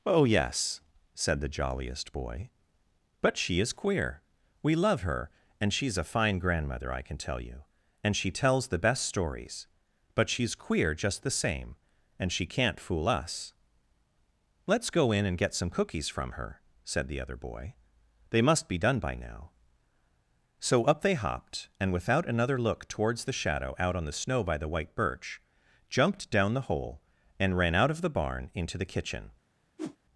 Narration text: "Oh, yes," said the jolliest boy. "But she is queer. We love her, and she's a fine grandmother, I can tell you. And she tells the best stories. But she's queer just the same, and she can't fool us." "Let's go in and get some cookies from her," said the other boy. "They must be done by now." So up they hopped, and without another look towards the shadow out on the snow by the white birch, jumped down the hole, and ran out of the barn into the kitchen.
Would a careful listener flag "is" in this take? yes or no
no